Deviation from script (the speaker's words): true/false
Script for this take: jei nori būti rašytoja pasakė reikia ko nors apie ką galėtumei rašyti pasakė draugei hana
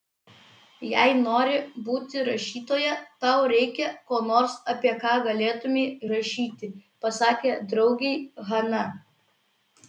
true